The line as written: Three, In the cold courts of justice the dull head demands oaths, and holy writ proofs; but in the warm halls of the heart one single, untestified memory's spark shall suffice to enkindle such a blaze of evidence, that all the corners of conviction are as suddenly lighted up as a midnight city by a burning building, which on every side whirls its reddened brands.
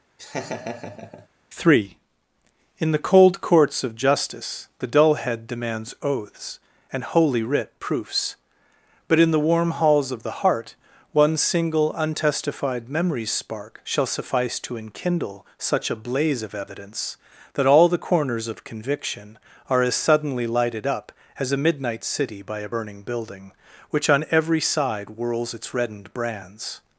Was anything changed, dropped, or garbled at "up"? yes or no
no